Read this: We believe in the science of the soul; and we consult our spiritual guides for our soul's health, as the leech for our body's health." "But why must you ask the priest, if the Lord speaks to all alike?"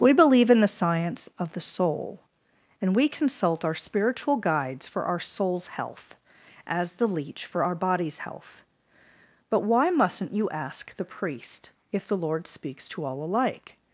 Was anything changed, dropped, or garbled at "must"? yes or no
yes